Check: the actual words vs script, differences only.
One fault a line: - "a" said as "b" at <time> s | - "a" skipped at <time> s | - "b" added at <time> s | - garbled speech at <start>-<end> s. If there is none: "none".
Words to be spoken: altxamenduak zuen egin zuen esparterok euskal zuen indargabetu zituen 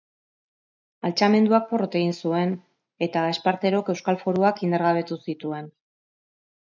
- "zuen" said as "porrot" at 1.7 s
- "eta" added at 3.1 s
- "zuen" said as "foruak" at 4.2 s